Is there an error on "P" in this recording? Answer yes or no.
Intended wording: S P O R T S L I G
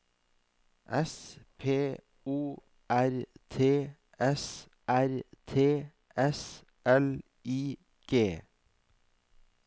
no